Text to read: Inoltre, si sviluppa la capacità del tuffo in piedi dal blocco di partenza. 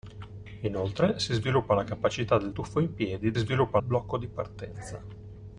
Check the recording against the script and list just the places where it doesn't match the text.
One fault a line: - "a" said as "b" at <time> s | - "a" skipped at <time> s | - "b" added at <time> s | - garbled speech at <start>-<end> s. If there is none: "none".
- "dal" said as "sviluppa" at 3.4 s